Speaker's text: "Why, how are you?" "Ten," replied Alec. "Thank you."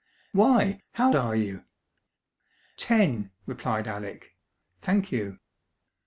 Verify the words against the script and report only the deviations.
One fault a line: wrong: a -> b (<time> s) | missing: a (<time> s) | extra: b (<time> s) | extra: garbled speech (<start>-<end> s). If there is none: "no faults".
no faults